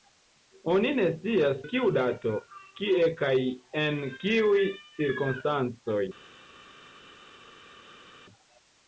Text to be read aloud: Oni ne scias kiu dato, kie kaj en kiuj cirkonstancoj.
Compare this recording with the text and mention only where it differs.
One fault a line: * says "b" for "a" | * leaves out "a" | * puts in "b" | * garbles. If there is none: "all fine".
all fine